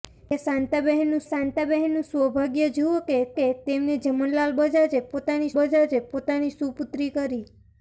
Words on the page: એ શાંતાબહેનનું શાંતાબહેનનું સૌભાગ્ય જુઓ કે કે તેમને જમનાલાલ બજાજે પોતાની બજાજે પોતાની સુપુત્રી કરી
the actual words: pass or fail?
pass